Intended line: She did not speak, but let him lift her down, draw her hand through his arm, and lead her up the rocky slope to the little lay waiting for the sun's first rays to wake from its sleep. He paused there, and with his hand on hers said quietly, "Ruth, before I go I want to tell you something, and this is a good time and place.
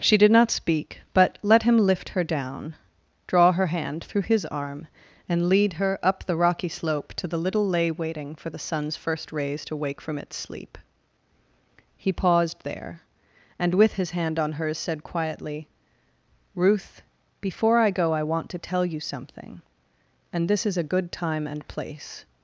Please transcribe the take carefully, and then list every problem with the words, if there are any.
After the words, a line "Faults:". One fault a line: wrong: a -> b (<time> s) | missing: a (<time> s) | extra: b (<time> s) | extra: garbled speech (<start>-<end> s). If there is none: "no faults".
She did not speak, but let him lift her down, draw her hand through his arm, and lead her up the rocky slope to the little lay waiting for the sun's first rays to wake from its sleep. He paused there, and with his hand on hers said quietly, "Ruth, before I go I want to tell you something, and this is a good time and place.
Faults:
no faults